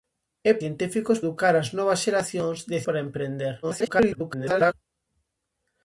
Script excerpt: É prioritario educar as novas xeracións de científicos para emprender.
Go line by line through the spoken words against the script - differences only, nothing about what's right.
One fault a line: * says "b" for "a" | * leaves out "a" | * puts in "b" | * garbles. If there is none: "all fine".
* says "científicos" for "prioritario"
* leaves out "científicos"
* garbles